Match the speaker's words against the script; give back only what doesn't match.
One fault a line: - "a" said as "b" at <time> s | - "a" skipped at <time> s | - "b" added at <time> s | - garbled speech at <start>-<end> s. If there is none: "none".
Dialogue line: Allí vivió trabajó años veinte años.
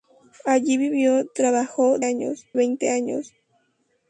none